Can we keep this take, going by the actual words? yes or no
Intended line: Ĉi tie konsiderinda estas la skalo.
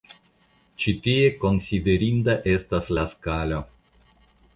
yes